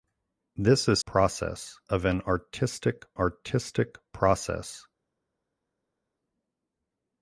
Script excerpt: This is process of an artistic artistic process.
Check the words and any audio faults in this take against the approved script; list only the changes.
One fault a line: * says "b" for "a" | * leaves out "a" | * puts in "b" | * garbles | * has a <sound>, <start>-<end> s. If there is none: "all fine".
all fine